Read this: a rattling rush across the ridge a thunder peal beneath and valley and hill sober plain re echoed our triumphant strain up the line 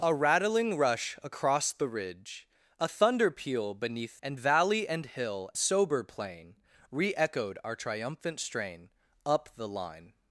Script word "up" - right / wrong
right